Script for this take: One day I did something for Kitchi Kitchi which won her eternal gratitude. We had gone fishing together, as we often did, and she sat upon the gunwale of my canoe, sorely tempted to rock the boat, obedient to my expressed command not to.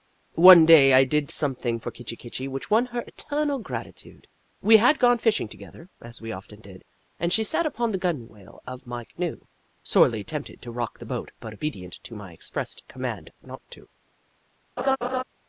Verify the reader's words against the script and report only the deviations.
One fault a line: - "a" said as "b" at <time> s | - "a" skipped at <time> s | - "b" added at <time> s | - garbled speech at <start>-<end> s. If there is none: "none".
- "but" added at 11.4 s